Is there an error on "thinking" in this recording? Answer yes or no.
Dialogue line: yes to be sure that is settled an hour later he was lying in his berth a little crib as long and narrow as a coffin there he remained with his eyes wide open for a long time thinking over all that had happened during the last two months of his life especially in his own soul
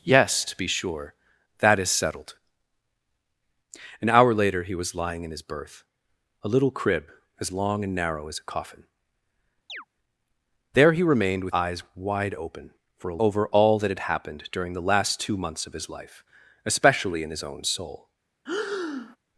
yes